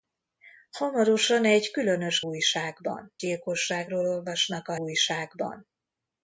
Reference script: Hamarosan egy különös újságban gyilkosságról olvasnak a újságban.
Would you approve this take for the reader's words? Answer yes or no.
yes